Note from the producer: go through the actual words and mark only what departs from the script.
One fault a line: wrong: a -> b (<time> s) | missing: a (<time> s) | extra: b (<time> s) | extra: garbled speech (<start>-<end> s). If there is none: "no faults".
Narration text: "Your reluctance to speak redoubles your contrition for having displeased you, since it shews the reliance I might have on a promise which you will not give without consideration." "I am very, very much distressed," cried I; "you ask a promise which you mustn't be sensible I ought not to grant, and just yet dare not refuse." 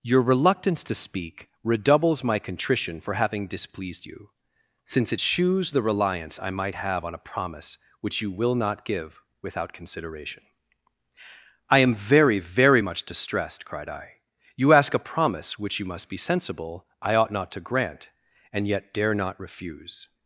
wrong: your -> my (2.2 s)
wrong: mustn't -> must (15.9 s)
missing: just (18.7 s)